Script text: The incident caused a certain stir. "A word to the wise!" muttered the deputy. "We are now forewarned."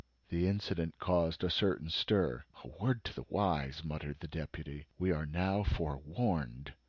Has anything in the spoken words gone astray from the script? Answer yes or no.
no